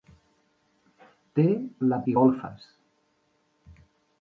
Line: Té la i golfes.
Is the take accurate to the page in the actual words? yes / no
yes